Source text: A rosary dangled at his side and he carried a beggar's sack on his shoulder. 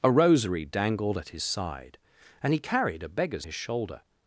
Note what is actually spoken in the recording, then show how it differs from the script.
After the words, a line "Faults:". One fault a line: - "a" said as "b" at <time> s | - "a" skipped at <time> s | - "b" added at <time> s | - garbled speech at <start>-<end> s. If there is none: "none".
A rosary dangled at his side and he carried a beggar's his shoulder.
Faults:
- "sack on" skipped at 3.5 s